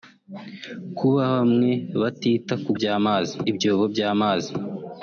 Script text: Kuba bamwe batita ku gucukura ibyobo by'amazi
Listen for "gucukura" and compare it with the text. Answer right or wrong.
wrong